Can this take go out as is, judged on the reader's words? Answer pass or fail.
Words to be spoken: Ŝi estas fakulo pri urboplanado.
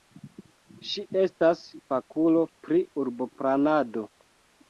pass